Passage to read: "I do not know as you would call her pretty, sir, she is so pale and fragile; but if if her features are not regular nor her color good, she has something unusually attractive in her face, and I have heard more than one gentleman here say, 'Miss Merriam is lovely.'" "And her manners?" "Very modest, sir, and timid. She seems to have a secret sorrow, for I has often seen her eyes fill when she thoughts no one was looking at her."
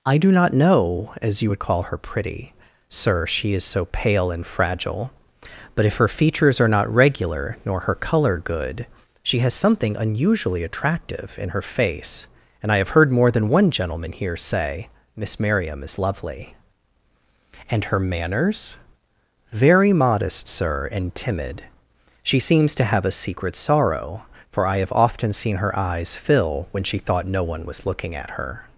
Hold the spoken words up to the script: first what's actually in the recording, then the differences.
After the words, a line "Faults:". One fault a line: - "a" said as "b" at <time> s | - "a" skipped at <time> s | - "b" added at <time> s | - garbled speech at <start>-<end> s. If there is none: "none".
"I do not know as you would call her pretty, sir, she is so pale and fragile; but if her features are not regular nor her color good, she has something unusually attractive in her face, and I have heard more than one gentleman here say, 'Miss Merriam is lovely.'" "And her manners?" "Very modest, sir, and timid. She seems to have a secret sorrow, for I have often seen her eyes fill when she thought no one was looking at her."
Faults:
- "if" skipped at 6.0 s
- "has" said as "have" at 24.8 s
- "thoughts" said as "thought" at 27.0 s